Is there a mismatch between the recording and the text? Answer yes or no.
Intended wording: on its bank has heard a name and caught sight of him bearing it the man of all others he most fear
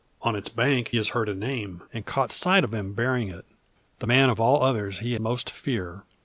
no